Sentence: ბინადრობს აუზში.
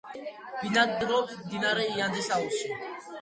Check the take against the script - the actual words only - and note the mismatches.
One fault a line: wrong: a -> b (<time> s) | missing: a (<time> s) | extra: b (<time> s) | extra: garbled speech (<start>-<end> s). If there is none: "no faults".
extra: მდინარე იანძის (1.4 s)